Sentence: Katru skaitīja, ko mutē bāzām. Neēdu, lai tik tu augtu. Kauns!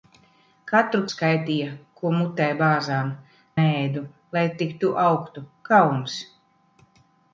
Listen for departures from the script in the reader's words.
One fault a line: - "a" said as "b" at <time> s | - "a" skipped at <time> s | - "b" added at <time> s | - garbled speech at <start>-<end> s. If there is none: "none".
none